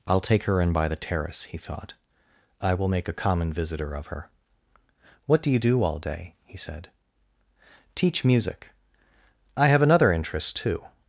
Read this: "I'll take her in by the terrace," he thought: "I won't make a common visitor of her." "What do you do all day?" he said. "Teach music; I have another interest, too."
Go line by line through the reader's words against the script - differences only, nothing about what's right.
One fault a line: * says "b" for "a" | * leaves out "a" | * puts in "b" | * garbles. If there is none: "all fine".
* says "will" for "won't"